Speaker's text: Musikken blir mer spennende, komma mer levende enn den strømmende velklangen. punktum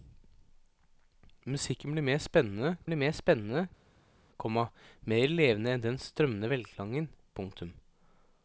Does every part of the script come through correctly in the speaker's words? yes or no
no